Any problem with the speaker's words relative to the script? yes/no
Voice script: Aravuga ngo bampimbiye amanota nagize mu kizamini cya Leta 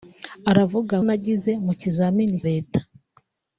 yes